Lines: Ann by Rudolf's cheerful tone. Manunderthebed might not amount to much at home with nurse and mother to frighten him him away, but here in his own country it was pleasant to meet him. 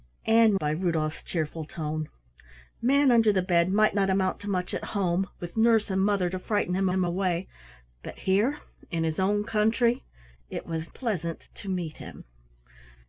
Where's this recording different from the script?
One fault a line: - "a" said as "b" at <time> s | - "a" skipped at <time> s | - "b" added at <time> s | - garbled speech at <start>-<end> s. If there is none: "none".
none